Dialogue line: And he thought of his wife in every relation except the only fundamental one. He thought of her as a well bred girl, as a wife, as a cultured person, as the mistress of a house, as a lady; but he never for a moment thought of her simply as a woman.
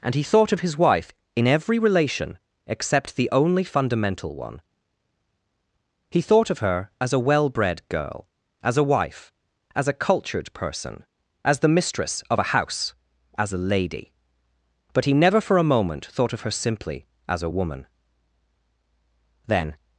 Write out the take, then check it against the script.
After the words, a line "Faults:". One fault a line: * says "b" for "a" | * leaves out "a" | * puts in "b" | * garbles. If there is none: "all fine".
And he thought of his wife in every relation except the only fundamental one. He thought of her as a well bred girl, as a wife, as a cultured person, as the mistress of a house, as a lady; but he never for a moment thought of her simply as a woman. Then
Faults:
* puts in "Then"